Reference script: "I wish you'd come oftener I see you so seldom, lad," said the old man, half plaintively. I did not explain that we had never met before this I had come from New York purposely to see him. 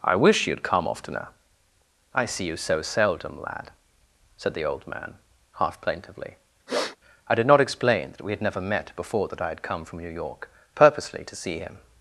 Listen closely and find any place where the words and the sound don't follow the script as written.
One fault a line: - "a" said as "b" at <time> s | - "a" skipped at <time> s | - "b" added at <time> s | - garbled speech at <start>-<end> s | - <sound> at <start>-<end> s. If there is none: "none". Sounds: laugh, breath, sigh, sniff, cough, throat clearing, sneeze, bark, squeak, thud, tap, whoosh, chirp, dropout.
- sniff at 6.7-7.0 s
- "this" said as "that" at 9.3 s